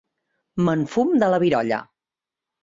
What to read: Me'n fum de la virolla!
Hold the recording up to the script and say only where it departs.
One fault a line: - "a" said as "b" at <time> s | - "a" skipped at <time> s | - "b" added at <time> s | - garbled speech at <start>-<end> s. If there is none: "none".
none